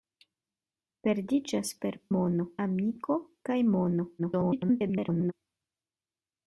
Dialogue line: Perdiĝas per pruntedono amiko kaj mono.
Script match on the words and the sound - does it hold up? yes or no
no